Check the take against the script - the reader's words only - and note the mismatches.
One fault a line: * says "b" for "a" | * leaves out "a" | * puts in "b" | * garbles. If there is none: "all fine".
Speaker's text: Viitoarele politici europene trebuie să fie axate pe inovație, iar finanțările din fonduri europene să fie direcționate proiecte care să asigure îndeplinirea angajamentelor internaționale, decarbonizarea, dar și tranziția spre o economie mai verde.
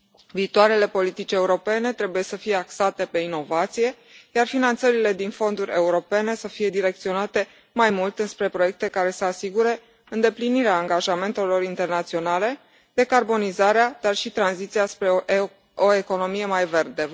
* puts in "mai mult înspre"